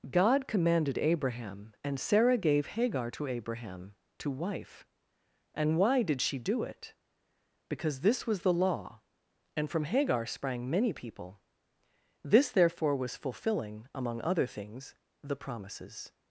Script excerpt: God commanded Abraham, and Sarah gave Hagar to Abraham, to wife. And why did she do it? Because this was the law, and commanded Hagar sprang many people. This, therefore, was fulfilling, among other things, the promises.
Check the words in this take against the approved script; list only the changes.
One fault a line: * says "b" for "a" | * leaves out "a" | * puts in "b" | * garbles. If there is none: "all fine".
* says "from" for "commanded"